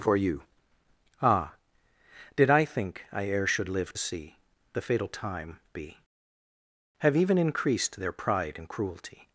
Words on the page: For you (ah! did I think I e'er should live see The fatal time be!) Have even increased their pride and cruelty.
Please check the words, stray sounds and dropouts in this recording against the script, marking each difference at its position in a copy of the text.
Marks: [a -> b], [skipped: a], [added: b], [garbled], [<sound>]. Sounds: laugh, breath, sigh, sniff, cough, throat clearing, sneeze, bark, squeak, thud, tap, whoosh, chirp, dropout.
For you (ah! did I think I e'er should live see The fatal time be!) Have even increased their pride and cruelty.